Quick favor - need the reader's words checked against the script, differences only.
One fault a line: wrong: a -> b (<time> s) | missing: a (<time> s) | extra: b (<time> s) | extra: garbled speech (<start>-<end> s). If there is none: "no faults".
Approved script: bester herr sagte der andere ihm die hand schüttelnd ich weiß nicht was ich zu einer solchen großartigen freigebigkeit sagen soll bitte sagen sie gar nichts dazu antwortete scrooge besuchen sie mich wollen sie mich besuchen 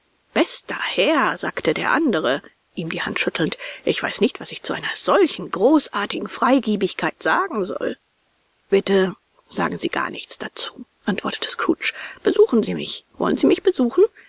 no faults